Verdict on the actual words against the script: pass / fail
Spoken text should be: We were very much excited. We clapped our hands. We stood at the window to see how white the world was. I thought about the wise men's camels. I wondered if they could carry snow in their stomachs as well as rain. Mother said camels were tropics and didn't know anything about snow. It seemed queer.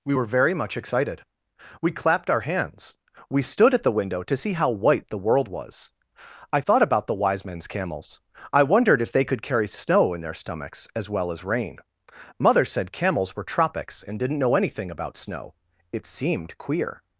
pass